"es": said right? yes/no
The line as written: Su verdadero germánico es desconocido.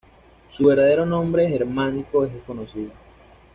yes